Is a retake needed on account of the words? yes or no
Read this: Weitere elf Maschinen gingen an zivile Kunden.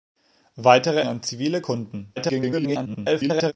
yes